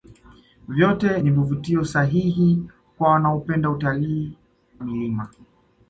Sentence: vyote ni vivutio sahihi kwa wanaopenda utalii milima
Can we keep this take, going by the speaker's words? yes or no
yes